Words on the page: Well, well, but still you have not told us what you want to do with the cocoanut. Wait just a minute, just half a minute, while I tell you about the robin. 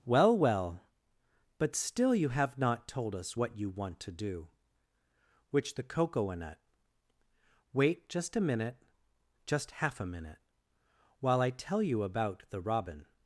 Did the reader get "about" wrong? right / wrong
right